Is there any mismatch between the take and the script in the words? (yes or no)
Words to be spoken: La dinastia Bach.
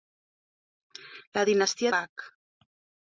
no